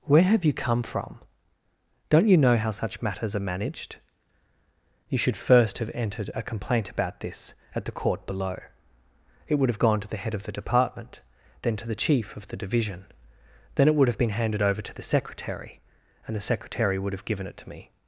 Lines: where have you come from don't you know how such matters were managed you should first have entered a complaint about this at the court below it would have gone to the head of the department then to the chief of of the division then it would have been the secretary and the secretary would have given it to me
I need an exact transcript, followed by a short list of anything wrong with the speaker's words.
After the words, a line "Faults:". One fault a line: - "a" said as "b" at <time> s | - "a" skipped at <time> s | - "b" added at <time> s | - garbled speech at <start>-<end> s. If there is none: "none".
where have you come from don't you know how such matters are managed you should first have entered a complaint about this at the court below it would have gone to the head of the department then to the chief of the division then it would have been handed over to the secretary and the secretary would have given it to me
Faults:
- "were" said as "are" at 3.4 s
- "of" skipped at 12.5 s
- "handed over to" added at 14.3 s